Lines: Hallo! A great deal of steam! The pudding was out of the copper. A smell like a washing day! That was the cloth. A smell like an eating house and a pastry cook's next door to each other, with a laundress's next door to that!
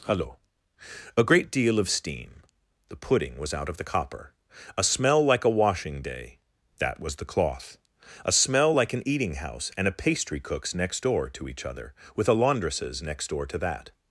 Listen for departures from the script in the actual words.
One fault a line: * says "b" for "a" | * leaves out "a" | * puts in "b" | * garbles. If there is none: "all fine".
all fine